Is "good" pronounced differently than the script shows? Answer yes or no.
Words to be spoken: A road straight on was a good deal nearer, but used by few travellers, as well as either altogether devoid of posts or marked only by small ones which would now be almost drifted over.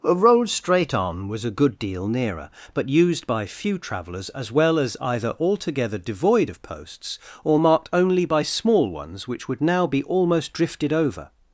no